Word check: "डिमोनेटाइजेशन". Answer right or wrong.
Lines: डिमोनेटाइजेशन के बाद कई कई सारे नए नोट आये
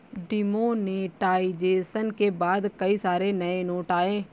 right